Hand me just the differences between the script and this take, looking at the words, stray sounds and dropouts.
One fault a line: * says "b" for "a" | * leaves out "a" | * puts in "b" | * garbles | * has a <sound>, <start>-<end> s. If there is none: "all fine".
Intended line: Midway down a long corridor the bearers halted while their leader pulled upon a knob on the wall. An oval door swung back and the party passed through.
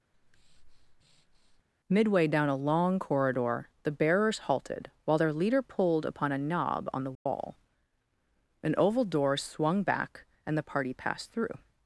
* has a breath, 0.1-1.6 s
* has a dropout, 7.1-7.3 s